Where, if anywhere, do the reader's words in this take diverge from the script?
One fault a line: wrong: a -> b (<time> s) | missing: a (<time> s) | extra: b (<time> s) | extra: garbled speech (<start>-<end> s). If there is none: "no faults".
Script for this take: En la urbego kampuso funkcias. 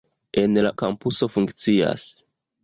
missing: urbego (0.7 s)